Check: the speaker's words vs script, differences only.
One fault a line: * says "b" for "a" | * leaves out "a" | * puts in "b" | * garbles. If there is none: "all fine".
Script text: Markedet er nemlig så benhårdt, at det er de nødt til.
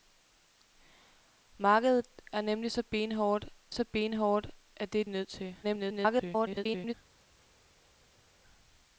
* puts in "så benhårdt"
* leaves out "de"
* garbles